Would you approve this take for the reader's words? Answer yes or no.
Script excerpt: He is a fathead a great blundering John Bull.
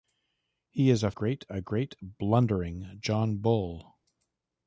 no